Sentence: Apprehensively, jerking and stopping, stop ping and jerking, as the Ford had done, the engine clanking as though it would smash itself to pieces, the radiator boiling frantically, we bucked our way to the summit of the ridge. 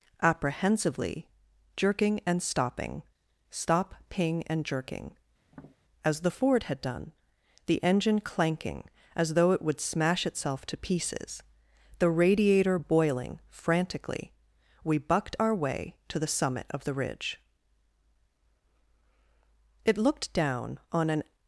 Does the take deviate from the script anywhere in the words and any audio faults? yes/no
yes